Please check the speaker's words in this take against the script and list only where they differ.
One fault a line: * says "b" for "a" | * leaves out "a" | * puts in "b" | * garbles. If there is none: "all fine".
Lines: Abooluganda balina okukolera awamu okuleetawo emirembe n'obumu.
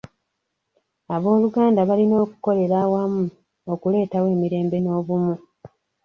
all fine